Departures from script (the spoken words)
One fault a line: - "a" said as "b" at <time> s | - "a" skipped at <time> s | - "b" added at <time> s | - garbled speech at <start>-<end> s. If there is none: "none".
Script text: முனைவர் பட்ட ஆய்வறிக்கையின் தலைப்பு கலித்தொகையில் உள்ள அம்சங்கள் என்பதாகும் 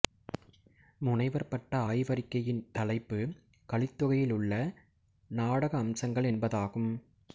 - "நாடக" added at 5.3 s